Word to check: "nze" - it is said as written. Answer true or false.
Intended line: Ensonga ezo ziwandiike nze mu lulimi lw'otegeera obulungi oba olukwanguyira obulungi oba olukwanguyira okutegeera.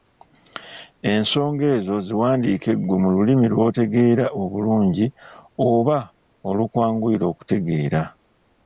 false